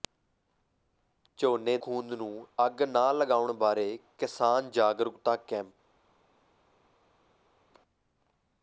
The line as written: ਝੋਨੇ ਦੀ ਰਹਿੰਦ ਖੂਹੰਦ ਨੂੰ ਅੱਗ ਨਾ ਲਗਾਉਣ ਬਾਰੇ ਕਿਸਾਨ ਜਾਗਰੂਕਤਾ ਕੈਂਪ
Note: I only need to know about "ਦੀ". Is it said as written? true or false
false